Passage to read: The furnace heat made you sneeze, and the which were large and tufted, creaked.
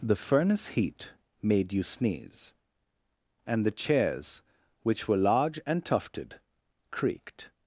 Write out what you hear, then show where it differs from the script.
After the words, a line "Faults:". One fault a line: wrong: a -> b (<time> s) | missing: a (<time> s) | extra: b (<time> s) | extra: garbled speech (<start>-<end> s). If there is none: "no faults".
The furnace heat made you sneeze, and the chairs, which were large and tufted, creaked.
Faults:
extra: chairs (3.7 s)